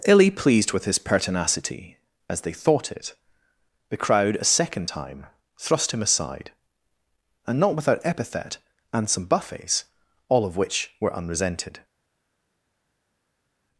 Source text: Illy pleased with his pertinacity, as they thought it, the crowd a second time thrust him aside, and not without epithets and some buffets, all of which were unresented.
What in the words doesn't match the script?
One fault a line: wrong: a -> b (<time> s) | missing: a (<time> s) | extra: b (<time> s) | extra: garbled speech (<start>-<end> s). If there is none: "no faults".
wrong: epithets -> epithet (8.0 s)